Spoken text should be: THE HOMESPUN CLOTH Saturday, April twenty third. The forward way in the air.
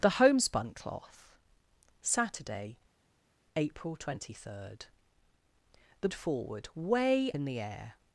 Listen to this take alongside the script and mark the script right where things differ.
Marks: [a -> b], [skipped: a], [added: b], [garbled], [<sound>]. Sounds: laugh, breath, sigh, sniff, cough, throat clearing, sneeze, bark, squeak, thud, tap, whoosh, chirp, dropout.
THE HOMESPUN CLOTH Saturday, April twenty third. The forward way in the air.